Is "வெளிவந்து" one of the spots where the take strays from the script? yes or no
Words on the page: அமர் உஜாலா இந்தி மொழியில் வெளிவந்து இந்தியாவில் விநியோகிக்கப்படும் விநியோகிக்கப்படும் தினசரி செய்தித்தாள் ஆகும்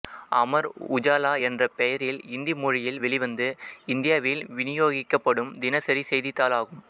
no